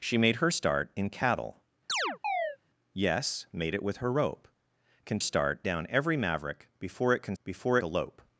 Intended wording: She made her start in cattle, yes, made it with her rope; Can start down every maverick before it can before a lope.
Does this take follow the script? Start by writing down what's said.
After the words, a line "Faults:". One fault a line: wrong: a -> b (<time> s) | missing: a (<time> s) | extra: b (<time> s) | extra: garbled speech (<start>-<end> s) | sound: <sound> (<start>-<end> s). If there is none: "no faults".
She made her start in cattle, yes, made it with her rope; Can start down every maverick before it can before a lope.
Faults:
sound: chirp (1.9-2.6 s)